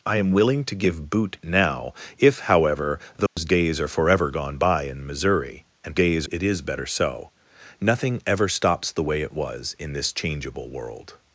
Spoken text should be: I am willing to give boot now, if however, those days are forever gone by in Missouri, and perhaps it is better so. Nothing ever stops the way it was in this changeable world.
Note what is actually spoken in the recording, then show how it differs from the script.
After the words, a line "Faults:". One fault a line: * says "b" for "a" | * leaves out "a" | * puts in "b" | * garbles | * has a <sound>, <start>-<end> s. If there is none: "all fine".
I am willing to give boot now, if however, those days are forever gone by in Missouri, and days it is better so. Nothing ever stops the way it was in this changeable world.
Faults:
* has a dropout, 3.3-3.4 s
* says "days" for "perhaps"